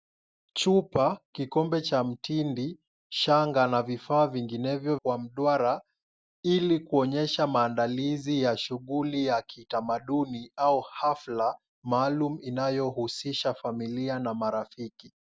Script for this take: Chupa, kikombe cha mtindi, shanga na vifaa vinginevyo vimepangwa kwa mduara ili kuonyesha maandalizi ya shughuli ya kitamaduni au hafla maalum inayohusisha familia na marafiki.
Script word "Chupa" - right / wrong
right